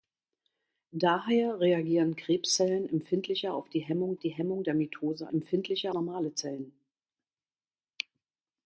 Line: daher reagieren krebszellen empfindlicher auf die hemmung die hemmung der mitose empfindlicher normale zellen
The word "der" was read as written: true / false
true